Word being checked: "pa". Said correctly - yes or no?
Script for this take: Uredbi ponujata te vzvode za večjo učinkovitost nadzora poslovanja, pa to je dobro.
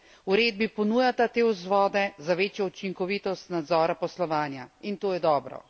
no